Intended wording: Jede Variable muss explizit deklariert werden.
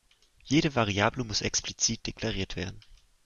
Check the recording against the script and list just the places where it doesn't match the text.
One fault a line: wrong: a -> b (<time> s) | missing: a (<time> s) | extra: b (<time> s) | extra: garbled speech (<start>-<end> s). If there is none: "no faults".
no faults